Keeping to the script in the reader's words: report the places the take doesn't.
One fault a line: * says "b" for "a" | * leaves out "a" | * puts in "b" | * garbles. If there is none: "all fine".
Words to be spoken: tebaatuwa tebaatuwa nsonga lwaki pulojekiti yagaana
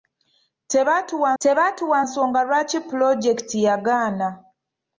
all fine